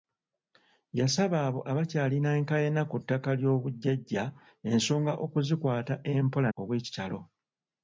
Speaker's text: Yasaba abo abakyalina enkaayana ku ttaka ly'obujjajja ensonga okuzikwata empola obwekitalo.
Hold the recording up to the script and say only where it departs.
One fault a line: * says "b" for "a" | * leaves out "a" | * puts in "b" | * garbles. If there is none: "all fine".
all fine